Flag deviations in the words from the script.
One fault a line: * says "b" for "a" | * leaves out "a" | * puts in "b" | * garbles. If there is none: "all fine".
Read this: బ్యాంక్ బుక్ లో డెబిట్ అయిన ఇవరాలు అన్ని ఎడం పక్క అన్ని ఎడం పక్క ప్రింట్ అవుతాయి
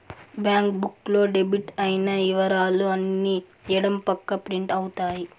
* leaves out "అన్ని ఎడం పక్క"